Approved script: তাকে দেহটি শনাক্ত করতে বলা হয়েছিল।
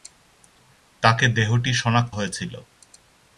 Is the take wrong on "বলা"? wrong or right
wrong